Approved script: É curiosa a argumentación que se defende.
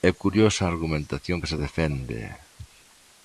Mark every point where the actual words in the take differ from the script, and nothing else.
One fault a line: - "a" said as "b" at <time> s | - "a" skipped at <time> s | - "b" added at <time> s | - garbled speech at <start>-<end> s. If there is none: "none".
none